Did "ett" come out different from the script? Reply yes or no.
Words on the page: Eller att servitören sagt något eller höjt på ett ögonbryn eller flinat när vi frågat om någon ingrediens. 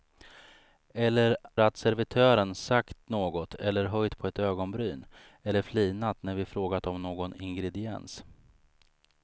no